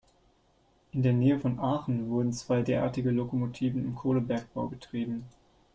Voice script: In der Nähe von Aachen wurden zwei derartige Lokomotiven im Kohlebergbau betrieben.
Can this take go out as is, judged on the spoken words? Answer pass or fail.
pass